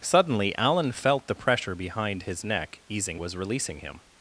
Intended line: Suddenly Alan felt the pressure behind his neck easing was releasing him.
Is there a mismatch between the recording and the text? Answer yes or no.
no